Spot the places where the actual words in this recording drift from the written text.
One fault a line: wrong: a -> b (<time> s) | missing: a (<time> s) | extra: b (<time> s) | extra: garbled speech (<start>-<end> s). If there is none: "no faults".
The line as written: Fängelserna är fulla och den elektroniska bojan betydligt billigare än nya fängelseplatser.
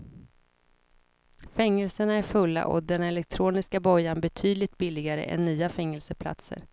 no faults